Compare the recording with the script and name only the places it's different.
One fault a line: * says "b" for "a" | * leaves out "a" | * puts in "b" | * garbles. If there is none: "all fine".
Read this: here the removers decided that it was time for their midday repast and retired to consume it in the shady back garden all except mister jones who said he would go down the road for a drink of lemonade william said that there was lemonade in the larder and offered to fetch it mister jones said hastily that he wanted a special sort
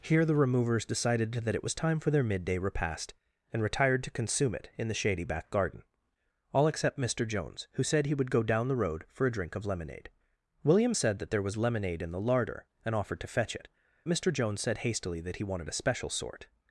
all fine